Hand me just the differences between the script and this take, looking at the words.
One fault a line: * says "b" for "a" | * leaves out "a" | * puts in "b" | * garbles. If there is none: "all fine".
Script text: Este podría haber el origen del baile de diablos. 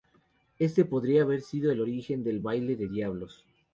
* puts in "sido"